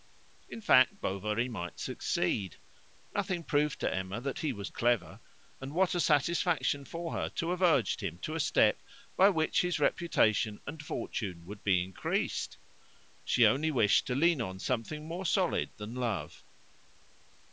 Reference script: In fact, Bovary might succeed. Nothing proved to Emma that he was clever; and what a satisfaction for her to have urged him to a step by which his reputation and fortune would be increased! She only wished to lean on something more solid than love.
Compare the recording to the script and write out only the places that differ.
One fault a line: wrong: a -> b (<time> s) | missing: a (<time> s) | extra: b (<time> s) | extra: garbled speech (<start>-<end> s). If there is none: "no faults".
no faults